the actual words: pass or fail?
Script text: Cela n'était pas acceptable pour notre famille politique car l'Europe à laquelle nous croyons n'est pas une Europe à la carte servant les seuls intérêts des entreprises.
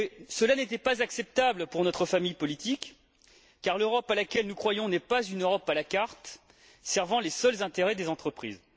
pass